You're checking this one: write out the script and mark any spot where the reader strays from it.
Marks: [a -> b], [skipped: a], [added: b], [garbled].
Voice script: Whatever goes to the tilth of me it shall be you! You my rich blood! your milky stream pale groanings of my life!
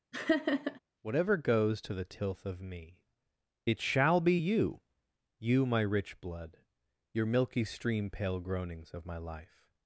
Whatever goes to the tilth of me it shall be you! You my rich blood! your milky stream pale groanings of my life!